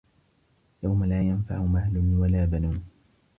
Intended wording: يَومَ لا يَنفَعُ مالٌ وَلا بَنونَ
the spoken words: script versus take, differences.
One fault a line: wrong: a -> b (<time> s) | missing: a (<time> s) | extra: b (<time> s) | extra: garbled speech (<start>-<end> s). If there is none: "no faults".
no faults